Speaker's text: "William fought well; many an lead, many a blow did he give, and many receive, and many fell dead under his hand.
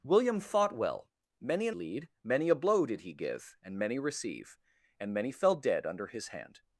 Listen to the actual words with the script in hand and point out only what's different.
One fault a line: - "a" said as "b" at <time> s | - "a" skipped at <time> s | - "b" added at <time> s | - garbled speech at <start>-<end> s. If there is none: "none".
none